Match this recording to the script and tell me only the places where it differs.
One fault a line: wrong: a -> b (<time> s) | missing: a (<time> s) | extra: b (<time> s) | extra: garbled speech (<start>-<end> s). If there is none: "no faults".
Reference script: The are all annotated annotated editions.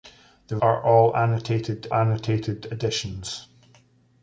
no faults